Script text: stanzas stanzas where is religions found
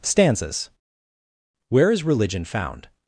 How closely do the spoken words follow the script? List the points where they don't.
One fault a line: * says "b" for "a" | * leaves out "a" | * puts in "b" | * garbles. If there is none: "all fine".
* leaves out "stanzas"
* says "religion" for "religions"